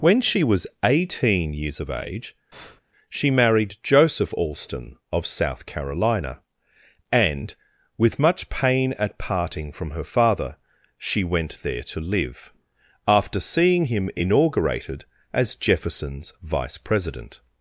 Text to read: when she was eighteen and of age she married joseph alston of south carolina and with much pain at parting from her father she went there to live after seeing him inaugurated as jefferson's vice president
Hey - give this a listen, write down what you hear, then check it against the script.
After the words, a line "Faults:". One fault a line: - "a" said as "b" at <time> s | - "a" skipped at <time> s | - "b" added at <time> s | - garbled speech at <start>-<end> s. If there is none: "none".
when she was eighteen years of age she married joseph alston of south carolina and with much pain at parting from her father she went there to live after seeing him inaugurated as jefferson's vice president
Faults:
- "and" said as "years" at 1.5 s